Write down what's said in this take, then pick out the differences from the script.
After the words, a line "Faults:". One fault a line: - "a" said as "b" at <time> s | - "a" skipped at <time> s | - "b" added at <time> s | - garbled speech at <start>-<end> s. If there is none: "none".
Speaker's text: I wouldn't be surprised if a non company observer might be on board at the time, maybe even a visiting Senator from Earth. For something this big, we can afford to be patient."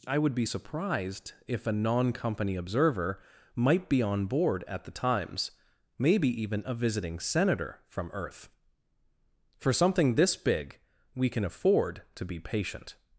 I would be surprised if a non company observer might be on board at the times, maybe even a visiting Senator from Earth. For something this big, we can afford to be patient."
Faults:
- "wouldn't" said as "would" at 0.2 s
- "time" said as "times" at 4.9 s